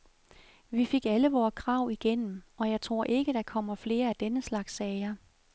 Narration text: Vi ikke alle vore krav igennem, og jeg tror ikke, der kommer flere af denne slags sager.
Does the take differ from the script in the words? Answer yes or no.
yes